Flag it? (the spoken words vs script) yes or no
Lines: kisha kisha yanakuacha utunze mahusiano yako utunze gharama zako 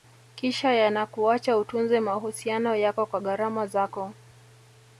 yes